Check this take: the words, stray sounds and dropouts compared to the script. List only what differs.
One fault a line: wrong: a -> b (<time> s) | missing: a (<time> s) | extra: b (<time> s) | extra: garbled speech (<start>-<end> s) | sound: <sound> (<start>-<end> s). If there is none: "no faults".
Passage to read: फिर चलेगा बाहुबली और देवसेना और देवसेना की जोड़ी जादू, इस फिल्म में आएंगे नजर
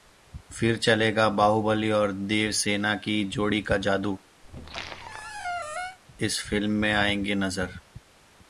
missing: और देवसेना (3.0 s)
extra: का (3.6 s)
sound: squeak (4.4-6.0 s)